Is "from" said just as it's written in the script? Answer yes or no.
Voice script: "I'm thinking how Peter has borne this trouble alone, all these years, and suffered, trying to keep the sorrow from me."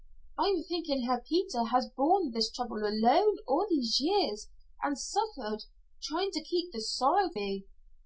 no